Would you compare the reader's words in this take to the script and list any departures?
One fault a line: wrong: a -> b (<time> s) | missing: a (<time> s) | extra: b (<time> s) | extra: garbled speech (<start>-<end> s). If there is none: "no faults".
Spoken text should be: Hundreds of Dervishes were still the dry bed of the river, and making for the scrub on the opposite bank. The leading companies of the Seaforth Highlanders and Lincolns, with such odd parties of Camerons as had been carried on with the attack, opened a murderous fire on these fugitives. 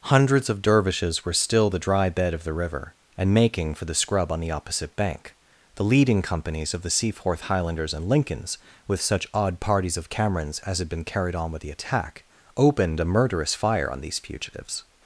no faults